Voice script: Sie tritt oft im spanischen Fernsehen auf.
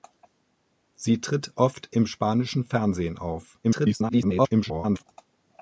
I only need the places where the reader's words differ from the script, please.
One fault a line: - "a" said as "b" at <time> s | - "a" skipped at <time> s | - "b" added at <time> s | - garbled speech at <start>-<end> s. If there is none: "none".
- garbled speech at 3.6-5.0 s